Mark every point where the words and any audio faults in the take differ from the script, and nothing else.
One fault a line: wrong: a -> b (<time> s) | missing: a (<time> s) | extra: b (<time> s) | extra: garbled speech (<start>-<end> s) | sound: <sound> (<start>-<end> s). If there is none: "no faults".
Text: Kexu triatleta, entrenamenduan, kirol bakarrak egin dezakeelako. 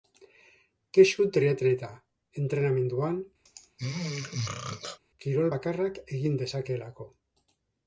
sound: throat clearing (3.5-5.0 s)